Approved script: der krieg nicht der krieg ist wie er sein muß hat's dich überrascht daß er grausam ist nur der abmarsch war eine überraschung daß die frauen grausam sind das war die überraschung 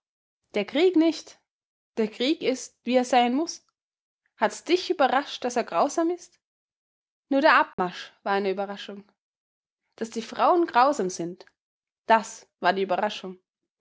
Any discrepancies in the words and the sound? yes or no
yes